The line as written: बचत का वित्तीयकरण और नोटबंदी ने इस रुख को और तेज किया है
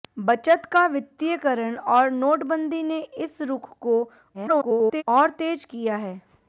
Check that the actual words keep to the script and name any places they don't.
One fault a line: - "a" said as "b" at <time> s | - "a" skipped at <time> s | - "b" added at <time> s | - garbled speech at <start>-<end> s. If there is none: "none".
- garbled speech at 4.3-5.0 s